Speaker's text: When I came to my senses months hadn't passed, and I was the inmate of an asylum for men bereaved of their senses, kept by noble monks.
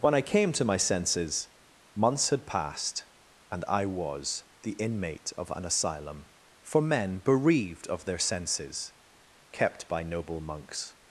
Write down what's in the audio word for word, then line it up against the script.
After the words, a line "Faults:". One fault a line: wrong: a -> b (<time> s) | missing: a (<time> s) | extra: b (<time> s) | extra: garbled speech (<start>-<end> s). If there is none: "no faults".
When I came to my senses months had passed, and I was the inmate of an asylum for men bereaved of their senses, kept by noble monks.
Faults:
wrong: hadn't -> had (2.3 s)